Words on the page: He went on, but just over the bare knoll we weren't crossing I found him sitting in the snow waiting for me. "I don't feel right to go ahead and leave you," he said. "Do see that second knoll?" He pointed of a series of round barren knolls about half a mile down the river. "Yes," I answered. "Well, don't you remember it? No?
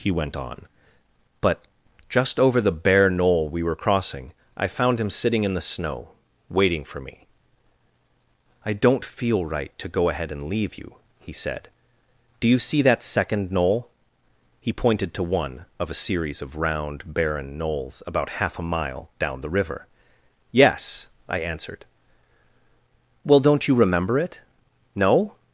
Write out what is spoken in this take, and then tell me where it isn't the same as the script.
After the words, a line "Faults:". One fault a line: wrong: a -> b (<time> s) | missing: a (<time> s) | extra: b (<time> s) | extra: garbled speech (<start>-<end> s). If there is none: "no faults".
He went on, but just over the bare knoll we were crossing I found him sitting in the snow waiting for me. "I don't feel right to go ahead and leave you," he said. "Do you see that second knoll?" He pointed to one of a series of round barren knolls about half a mile down the river. "Yes," I answered. "Well, don't you remember it? No?
Faults:
wrong: weren't -> were (3.6 s)
extra: you (12.5 s)
extra: to one (15.2 s)